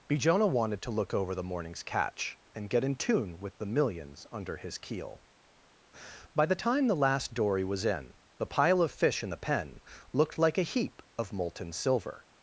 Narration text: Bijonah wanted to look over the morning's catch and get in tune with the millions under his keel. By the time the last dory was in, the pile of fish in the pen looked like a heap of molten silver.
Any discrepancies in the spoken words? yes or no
no